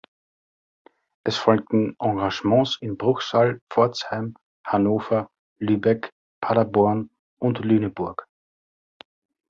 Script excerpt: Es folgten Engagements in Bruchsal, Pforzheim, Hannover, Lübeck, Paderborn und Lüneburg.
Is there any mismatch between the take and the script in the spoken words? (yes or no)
no